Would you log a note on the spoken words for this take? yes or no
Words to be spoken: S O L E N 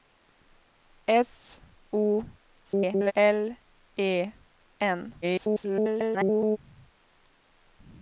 yes